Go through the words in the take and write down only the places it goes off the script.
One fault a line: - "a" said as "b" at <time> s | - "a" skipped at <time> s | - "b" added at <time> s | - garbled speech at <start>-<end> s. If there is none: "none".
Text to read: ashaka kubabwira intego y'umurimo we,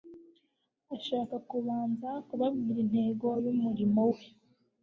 - "kubanza" added at 1.5 s